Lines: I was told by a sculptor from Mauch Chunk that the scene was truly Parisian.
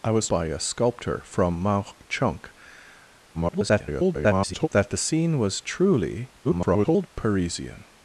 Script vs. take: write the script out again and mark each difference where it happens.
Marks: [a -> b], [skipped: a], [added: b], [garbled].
I was [skipped: told] by a sculptor from Mauch Chunk [garbled] that the scene was truly [garbled] Parisian.